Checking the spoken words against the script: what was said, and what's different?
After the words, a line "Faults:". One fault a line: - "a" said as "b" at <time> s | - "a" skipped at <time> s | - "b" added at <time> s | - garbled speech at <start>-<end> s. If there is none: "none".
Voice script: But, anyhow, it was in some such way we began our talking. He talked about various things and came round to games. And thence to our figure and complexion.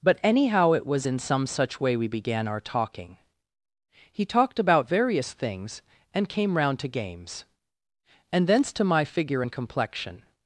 But, anyhow, it was in some such way we began our talking. He talked about various things and came round to games. And thence to my figure and complexion.
Faults:
- "our" said as "my" at 8.8 s